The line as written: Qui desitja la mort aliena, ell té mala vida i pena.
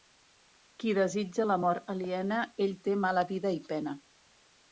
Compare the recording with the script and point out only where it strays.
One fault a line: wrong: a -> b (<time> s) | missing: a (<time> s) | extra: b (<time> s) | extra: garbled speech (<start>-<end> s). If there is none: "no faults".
no faults